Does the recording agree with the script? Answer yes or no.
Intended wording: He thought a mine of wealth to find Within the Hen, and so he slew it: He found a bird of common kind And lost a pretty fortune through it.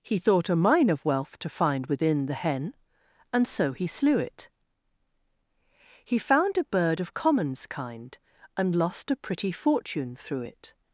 no